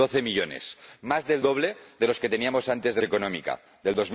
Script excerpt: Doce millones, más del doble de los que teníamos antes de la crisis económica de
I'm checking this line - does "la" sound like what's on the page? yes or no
no